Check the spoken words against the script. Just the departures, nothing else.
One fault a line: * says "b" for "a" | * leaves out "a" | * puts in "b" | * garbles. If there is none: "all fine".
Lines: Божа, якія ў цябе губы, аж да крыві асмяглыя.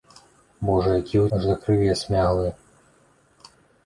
* leaves out "цябе губы"